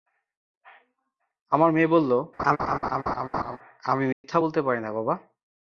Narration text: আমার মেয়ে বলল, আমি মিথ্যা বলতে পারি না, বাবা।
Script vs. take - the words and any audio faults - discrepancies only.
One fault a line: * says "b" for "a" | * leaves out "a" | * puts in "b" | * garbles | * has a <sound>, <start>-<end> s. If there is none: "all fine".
* has a laugh, 2.4-3.6 s
* has a dropout, 4.1-4.2 s